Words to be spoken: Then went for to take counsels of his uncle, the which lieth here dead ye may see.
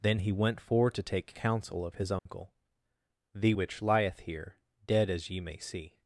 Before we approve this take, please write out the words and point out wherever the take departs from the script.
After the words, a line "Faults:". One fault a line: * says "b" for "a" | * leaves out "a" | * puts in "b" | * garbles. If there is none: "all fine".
Then he went for to take counsel of his uncle, the which lieth here dead as ye may see.
Faults:
* puts in "he"
* says "counsel" for "counsels"
* puts in "as"